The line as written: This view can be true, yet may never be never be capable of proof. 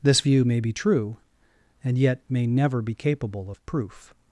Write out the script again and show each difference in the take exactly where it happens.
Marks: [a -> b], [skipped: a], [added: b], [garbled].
This view [can -> may] be true, [added: and] yet may never be [skipped: never be] capable of proof.